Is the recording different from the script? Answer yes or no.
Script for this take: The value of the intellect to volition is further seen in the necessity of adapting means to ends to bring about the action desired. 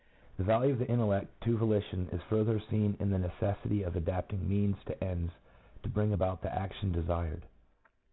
no